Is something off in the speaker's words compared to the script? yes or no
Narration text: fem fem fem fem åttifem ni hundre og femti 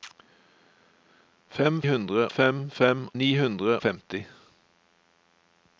yes